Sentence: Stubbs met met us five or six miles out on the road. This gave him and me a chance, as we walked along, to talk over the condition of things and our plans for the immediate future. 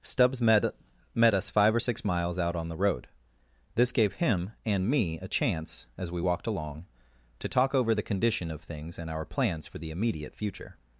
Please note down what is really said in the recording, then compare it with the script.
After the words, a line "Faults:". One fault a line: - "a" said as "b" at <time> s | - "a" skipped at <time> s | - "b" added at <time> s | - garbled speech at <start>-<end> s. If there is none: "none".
Stubbs met met us five or six miles out on the road. This gave him and me a chance, as we walked along, to talk over the condition of things and our plans for the immediate future.
Faults:
none